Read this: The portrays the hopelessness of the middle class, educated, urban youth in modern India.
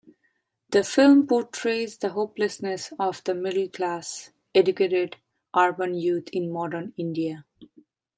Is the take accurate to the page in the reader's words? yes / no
no